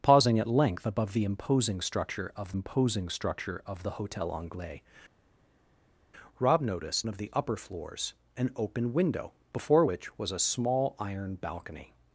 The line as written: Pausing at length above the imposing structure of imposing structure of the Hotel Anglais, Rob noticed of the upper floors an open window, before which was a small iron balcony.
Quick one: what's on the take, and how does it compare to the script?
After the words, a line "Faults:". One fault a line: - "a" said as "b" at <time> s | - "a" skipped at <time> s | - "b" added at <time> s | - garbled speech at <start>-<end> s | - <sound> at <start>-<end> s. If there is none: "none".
Pausing at length above the imposing structure of imposing structure of the Hotel Anglais, Rob noticed of the upper floors an open window, before which was a small iron balcony.
Faults:
none